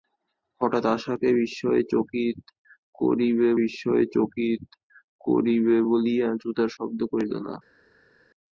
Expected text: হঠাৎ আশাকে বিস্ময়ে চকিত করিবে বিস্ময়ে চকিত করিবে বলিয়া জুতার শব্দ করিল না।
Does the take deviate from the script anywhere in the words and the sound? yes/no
no